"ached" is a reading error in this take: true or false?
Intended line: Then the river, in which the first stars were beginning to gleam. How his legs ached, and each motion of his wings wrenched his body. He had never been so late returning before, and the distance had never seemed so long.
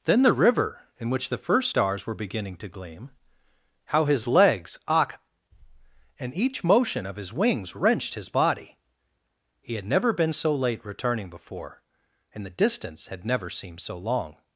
true